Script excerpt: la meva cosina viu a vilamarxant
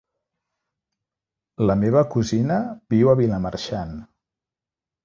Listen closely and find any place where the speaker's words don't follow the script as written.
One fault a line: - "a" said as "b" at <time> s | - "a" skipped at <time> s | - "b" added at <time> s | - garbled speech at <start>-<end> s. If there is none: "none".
none